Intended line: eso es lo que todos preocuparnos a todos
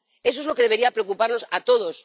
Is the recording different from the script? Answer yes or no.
yes